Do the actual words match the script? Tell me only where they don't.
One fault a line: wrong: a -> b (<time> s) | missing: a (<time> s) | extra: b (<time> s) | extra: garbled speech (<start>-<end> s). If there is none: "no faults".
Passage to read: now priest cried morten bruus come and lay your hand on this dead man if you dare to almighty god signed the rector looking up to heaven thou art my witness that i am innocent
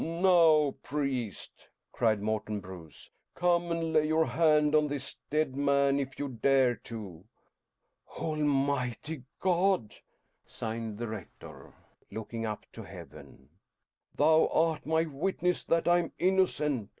no faults